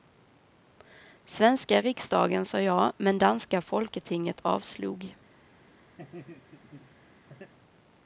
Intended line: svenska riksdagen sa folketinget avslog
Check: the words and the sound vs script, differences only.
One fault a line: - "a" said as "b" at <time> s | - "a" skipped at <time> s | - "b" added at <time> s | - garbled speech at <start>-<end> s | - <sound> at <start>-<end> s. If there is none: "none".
- "ja men danska" added at 2.6 s
- laugh at 6.0-7.5 s